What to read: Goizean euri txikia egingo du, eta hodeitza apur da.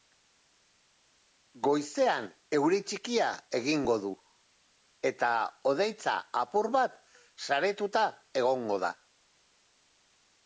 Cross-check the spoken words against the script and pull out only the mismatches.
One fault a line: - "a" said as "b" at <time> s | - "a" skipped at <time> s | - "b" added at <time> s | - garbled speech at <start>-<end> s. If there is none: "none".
- "bat saretuta egongo" added at 6.8 s